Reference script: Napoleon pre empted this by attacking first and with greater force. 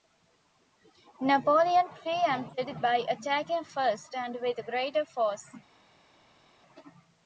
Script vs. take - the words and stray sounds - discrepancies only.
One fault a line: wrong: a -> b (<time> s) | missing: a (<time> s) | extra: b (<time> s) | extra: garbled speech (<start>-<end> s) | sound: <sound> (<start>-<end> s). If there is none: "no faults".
missing: this (2.8 s)